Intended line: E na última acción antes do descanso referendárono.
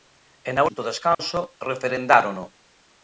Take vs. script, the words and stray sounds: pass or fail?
fail